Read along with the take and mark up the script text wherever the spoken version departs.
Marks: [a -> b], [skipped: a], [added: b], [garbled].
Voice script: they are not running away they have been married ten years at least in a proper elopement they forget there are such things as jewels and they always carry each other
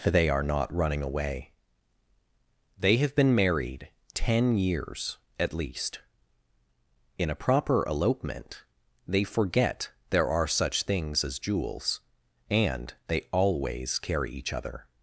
they are not running away they have been married ten years at least in a proper elopement they forget there are such things as jewels and they always carry each other